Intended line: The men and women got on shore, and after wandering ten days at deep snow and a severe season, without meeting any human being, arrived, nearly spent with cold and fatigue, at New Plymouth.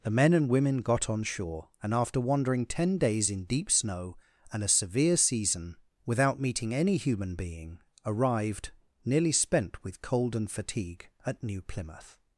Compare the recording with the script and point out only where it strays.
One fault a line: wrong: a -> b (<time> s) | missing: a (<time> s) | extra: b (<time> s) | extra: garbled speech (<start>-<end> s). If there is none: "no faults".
wrong: at -> in (3.3 s)